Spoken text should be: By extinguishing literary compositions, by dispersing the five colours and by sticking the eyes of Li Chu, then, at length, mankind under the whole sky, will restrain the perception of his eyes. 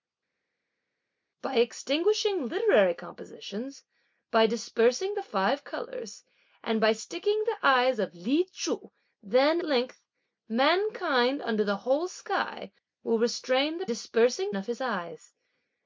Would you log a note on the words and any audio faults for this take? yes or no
yes